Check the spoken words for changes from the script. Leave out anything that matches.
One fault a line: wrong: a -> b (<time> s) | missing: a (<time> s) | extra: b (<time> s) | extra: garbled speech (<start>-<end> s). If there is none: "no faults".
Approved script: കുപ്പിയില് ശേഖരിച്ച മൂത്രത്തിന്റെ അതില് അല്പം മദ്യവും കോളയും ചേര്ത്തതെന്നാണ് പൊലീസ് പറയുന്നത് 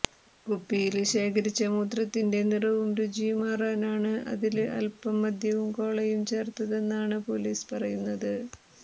extra: നിറവും രുചിയും മാറാനാണ് (2.5 s)